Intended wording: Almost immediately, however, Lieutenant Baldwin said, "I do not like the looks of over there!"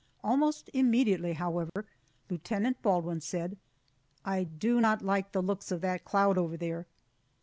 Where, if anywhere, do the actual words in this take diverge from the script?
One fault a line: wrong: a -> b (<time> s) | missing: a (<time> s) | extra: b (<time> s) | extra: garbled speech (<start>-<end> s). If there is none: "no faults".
extra: that cloud (5.8 s)